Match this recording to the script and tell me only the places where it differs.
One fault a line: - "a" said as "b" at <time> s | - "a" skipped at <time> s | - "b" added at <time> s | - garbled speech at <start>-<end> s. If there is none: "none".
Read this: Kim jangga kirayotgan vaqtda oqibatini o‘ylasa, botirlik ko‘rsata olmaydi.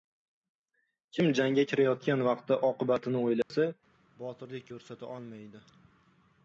none